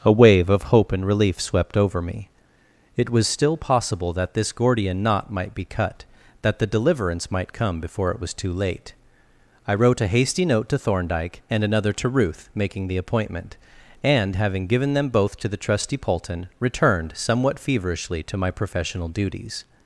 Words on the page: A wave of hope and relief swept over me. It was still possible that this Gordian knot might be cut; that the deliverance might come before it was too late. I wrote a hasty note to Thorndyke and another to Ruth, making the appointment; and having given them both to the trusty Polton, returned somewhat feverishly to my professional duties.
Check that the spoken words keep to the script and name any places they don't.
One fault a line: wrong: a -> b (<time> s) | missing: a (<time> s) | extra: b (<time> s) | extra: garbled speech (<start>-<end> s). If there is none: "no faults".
no faults